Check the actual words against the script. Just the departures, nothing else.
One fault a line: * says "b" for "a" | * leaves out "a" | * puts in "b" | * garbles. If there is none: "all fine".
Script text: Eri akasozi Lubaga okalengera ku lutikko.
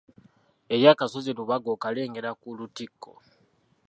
all fine